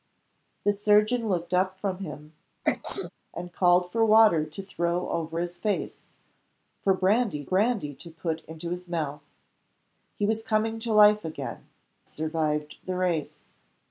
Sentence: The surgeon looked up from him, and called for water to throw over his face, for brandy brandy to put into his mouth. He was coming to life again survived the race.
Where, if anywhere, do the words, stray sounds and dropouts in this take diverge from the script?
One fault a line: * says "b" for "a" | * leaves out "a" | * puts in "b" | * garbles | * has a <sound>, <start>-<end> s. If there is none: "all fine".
* has a sneeze, 2.6-3.1 s